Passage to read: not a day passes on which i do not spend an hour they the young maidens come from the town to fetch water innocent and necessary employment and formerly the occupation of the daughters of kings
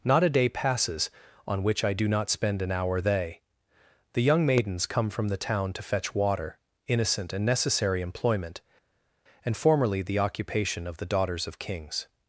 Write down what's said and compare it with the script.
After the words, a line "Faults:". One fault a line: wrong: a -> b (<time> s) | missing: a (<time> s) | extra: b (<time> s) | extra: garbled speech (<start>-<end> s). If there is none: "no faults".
not a day passes on which i do not spend an hour they the young maidens come from the town to fetch water innocent and necessary employment and formerly the occupation of the daughters of kings
Faults:
no faults